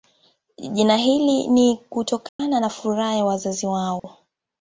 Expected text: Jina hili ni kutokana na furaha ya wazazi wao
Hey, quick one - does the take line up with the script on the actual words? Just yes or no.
yes